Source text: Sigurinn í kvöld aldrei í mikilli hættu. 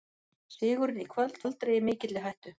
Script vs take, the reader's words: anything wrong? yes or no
no